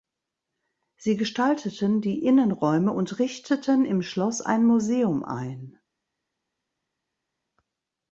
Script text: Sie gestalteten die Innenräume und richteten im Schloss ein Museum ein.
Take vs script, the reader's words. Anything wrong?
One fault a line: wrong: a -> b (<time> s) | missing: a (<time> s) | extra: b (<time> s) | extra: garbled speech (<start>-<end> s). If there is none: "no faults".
no faults